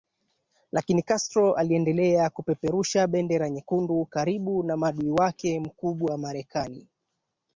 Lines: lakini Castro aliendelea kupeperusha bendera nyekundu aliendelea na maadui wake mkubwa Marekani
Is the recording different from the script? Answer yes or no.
yes